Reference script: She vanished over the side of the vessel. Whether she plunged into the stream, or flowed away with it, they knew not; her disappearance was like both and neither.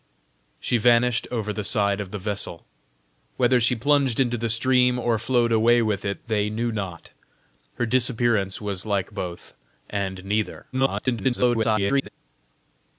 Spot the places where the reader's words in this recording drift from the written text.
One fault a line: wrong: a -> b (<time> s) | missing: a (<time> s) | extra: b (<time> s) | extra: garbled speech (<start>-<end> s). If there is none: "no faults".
extra: garbled speech (10.7-12.1 s)